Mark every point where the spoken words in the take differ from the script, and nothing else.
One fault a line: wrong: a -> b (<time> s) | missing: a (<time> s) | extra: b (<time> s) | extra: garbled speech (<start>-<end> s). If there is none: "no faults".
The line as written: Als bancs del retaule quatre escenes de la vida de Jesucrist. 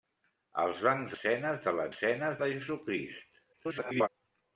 missing: del retaule quatre (1.2 s)
wrong: vida -> escenes (1.9 s)
extra: garbled speech (3.5-4.1 s)